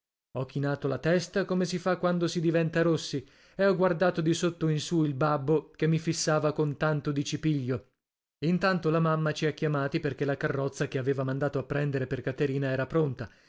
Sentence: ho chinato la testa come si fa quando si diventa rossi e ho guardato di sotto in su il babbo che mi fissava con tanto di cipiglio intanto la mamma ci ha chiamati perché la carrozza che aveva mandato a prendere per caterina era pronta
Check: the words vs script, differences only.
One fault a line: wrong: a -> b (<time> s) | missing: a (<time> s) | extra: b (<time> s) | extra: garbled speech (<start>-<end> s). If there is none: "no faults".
no faults